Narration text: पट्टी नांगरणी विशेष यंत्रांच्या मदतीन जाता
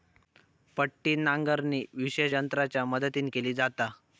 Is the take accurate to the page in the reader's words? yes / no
no